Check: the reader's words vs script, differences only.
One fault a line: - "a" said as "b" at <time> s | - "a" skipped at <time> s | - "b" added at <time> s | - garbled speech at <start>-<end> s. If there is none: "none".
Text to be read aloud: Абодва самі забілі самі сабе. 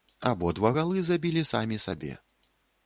- "самі" said as "галы" at 0.8 s